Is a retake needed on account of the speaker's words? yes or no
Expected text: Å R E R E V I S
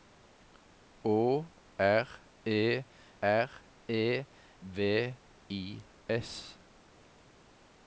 no